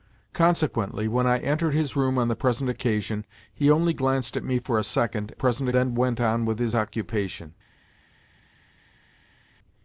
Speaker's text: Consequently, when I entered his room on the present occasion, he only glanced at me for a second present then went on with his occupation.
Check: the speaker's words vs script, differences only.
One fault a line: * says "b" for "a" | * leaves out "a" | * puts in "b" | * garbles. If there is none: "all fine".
all fine